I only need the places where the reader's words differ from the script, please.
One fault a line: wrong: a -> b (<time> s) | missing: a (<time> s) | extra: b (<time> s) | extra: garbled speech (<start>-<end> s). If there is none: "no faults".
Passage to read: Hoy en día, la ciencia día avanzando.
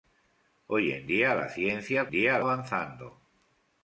no faults